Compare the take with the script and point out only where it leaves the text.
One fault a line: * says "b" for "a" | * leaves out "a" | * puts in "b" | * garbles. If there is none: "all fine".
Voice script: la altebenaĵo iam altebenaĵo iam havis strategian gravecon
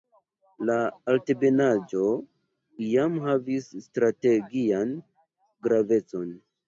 * leaves out "altebenaĵo iam"